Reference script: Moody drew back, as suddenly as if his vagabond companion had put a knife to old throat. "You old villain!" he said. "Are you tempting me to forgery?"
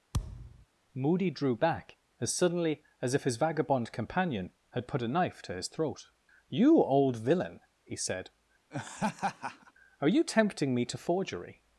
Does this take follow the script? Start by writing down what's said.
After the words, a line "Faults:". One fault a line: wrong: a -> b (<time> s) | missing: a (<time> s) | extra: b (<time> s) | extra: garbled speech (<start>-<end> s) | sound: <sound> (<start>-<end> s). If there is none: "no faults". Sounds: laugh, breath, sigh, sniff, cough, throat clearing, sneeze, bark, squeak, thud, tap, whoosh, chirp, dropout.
Moody drew back, as suddenly as if his vagabond companion had put a knife to his throat. "You old villain!" he said. "Are you tempting me to forgery?"
Faults:
sound: thud (0.1-0.7 s)
wrong: old -> his (5.5 s)
sound: laugh (8.7-9.7 s)